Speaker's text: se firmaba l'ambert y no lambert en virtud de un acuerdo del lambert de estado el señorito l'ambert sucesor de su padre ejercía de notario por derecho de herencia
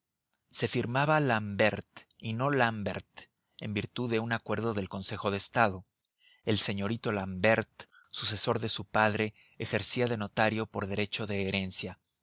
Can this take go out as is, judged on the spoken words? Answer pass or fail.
fail